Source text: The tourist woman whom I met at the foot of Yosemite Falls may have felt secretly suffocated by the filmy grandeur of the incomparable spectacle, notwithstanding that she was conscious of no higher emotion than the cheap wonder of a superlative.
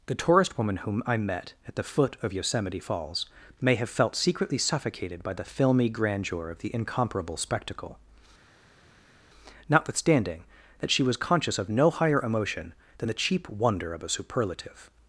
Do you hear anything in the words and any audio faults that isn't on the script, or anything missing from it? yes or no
no